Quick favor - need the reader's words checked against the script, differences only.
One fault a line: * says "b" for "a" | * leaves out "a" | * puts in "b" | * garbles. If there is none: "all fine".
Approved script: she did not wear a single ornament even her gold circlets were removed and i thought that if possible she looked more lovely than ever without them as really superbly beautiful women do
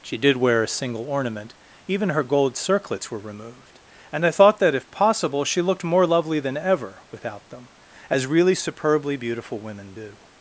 * leaves out "not"